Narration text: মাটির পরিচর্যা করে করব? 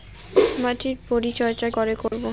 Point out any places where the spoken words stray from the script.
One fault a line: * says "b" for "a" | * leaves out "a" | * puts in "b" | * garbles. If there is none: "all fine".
all fine